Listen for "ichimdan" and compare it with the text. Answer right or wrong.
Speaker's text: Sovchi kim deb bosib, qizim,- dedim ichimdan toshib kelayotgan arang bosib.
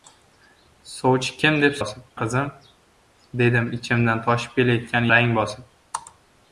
right